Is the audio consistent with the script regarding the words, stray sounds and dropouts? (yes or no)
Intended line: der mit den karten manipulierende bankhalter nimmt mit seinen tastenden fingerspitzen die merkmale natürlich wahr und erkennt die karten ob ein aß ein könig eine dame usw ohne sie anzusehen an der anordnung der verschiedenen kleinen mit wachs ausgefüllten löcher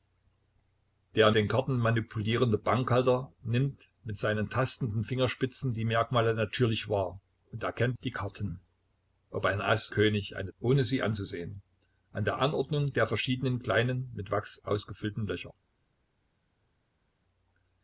no